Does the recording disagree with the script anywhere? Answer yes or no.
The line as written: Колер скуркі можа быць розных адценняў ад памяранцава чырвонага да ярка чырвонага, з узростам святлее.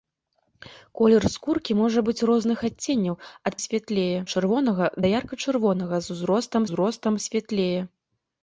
yes